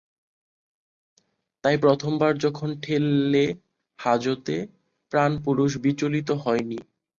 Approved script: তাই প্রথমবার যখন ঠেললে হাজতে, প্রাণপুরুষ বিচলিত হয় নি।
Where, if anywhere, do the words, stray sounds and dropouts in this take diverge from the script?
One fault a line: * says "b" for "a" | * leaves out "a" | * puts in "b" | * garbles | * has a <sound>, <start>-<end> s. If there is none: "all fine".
all fine